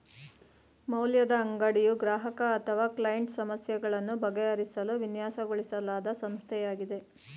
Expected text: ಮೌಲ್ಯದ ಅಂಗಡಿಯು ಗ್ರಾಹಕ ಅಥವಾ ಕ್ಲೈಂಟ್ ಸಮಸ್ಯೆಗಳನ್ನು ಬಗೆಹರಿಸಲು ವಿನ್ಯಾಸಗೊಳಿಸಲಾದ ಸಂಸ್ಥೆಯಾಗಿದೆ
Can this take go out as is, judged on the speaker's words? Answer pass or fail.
pass